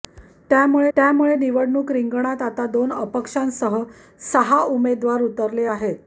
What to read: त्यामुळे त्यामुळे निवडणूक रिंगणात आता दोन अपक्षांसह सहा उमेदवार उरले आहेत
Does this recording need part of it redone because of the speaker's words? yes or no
no